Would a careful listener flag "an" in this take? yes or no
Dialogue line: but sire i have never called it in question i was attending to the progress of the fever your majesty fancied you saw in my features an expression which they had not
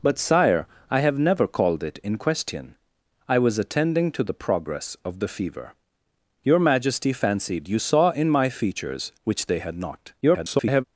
yes